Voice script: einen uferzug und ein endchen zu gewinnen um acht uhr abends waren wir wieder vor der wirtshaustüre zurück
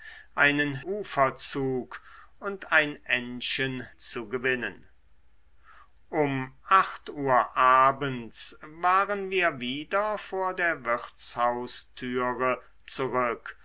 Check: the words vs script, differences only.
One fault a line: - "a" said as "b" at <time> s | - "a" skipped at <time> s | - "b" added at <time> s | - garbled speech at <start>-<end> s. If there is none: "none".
none